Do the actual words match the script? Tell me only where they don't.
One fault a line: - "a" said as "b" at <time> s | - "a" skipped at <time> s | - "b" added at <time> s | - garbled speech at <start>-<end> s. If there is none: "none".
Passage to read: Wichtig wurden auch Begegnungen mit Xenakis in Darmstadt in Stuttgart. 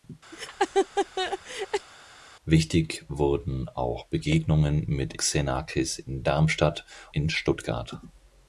none